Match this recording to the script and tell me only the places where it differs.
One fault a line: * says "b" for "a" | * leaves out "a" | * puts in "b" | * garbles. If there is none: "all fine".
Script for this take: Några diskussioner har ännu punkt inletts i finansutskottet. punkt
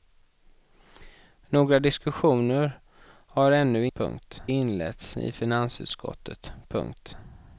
all fine